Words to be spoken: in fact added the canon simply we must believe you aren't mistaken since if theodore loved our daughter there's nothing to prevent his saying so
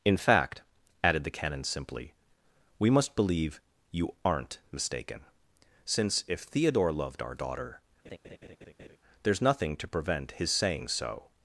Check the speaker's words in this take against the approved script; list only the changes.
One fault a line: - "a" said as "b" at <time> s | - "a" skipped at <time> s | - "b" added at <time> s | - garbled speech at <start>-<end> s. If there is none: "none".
none